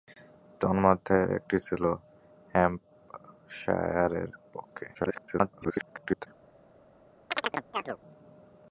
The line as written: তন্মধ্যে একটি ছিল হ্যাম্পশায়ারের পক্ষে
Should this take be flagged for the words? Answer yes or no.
yes